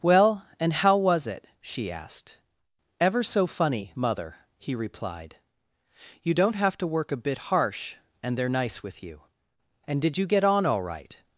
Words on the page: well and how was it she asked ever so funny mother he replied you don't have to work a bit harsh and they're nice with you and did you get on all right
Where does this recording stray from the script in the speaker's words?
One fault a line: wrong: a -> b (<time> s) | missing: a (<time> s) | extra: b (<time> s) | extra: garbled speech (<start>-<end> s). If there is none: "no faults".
no faults